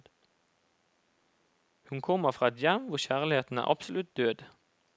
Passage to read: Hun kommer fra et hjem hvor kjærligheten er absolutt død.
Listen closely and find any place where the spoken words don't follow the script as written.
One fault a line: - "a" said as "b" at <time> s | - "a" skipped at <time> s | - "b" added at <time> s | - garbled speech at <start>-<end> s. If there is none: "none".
none